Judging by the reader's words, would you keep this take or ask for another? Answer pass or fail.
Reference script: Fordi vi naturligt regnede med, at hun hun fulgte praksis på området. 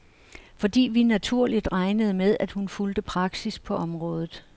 fail